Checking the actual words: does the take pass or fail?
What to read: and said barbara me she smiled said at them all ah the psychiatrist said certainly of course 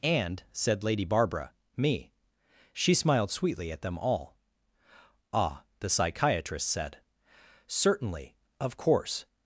fail